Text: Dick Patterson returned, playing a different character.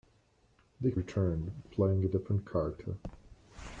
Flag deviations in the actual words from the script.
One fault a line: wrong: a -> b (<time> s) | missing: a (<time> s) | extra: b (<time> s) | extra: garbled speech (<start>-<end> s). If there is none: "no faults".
missing: Patterson (1.0 s)